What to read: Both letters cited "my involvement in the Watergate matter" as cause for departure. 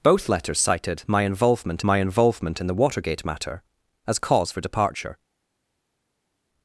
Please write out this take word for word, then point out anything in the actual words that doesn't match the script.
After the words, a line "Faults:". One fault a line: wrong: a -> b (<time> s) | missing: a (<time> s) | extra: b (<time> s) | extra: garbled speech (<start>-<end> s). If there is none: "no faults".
Both letters cited "my involvement my involvement in the Watergate matter" as cause for departure.
Faults:
extra: my involvement (1.8 s)